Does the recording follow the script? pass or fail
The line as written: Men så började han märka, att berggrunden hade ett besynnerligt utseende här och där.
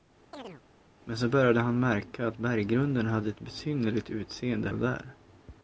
fail